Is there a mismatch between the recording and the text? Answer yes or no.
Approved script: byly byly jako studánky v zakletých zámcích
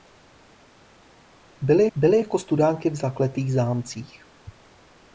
no